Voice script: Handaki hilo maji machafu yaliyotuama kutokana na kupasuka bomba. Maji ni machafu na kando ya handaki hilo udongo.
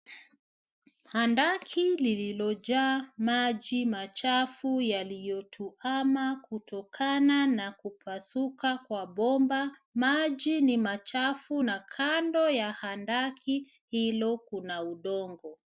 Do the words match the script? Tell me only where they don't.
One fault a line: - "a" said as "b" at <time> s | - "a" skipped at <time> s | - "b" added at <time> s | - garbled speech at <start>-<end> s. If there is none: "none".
- "hilo" said as "lililojaa" at 1.9 s
- "kwa" added at 8.8 s
- "kuna" added at 14.4 s